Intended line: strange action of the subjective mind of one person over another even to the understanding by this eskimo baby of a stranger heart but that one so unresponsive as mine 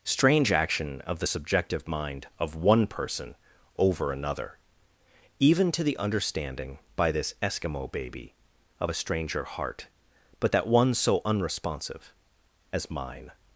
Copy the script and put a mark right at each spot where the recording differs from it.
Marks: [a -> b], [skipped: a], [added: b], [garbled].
strange action of the subjective mind of one person over another even to the understanding by this eskimo baby of a stranger heart but that one so unresponsive as mine